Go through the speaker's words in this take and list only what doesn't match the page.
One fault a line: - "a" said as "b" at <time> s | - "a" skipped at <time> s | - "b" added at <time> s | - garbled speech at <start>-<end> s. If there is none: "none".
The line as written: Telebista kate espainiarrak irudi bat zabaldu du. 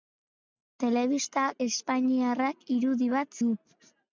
- "kate" skipped at 1.4 s
- "zabaldu" skipped at 3.4 s